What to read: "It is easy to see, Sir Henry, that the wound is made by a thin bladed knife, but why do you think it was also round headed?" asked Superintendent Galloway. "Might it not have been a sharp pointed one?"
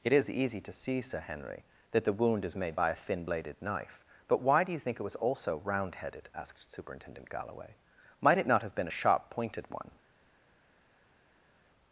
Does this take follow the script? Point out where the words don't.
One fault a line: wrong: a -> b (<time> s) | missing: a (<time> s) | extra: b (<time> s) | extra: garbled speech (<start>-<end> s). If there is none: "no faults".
no faults